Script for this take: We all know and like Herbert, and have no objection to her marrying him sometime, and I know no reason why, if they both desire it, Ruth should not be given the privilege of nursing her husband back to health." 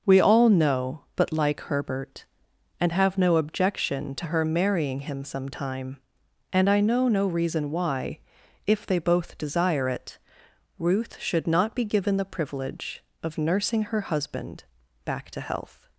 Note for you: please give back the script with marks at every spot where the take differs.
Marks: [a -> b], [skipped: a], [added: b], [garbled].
We all know [and -> but] like Herbert, and have no objection to her marrying him sometime, and I know no reason why, if they both desire it, Ruth should not be given the privilege of nursing her husband back to health."